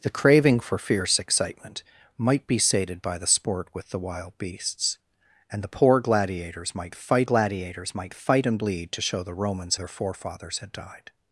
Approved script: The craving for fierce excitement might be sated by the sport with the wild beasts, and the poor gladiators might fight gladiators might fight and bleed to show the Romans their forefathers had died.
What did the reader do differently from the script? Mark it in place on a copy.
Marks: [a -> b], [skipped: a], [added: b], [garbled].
The craving for fierce excitement might be sated by the sport with the wild beasts, and the poor gladiators might fight gladiators might fight and bleed to show the Romans their forefathers had died.